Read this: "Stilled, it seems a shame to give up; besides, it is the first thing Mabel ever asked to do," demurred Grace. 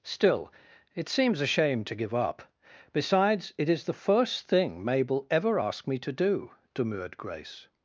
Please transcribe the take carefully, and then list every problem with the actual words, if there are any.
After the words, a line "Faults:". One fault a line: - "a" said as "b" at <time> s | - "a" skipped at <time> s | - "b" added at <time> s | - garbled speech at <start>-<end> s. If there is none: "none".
"Still, it seems a shame to give up; besides, it is the first thing Mabel ever asked me to do," demurred Grace.
Faults:
- "Stilled" said as "Still" at 0.0 s
- "me" added at 5.9 s